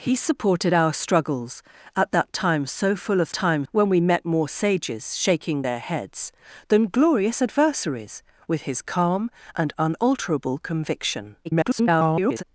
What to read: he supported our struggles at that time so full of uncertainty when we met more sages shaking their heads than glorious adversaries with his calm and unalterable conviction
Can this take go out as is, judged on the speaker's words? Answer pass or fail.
fail